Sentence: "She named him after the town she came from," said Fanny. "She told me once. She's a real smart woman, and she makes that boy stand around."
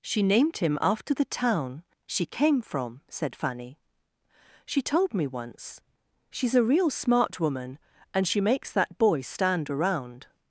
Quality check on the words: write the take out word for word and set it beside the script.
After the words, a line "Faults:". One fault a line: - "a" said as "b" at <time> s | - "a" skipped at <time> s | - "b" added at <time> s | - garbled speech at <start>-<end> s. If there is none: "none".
"She named him after the town she came from," said Fanny. "She told me once. She's a real smart woman, and she makes that boy stand around."
Faults:
none